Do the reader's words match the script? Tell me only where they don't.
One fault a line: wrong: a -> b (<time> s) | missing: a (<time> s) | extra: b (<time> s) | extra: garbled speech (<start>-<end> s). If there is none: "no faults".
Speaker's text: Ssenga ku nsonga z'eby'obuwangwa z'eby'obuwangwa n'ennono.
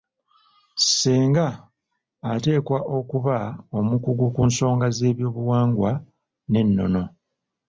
extra: ateekwa okuba omukugu (2.3 s)
missing: z'eby'obuwangwa (5.9 s)